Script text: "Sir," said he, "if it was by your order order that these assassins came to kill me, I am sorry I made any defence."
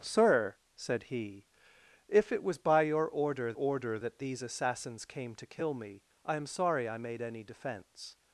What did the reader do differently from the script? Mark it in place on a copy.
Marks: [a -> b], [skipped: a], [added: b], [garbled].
"Sir," said he, "if it was by your order order that these assassins came to kill me, I am sorry I made any defence."